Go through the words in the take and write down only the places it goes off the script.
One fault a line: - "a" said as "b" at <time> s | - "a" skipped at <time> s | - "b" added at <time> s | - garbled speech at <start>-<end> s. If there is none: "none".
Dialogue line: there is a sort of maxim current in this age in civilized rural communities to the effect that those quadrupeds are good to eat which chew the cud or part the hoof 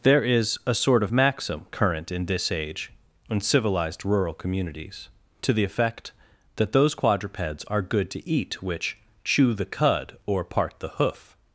none